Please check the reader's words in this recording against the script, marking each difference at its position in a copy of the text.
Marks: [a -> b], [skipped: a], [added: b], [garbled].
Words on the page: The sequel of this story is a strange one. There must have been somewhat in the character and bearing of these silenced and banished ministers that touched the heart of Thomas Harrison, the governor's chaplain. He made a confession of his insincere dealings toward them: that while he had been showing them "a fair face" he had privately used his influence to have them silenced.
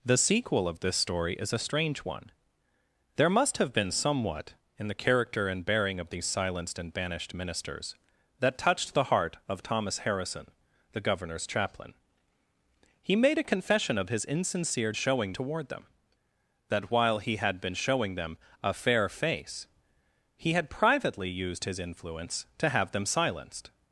The sequel of this story is a strange one. There must have been somewhat in the character and bearing of these silenced and banished ministers that touched the heart of Thomas Harrison, the governor's chaplain. He made a confession of his insincere [dealings -> showing] toward them: that while he had been showing them "a fair face" he had privately used his influence to have them silenced.